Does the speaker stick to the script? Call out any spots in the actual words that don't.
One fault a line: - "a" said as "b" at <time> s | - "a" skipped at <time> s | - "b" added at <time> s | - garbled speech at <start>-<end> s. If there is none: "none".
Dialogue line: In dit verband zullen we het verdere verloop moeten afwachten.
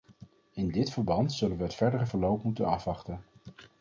none